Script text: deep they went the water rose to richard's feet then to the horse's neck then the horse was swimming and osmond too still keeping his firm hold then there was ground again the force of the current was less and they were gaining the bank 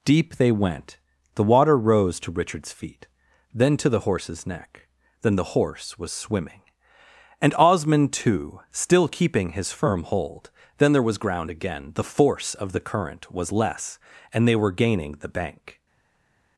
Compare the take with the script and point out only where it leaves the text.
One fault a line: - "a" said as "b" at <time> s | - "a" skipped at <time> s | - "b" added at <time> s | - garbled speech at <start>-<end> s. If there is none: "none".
none